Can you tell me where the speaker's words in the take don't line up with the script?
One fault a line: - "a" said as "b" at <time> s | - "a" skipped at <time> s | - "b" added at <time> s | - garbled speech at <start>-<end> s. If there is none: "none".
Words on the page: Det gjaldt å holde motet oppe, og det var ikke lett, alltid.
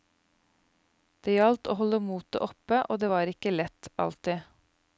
none